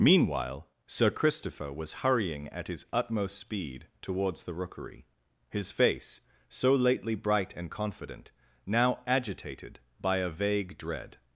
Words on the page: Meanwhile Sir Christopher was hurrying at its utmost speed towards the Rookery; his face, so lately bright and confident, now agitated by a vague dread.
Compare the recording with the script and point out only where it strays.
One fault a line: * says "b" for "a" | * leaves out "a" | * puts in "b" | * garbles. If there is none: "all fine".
* says "his" for "its"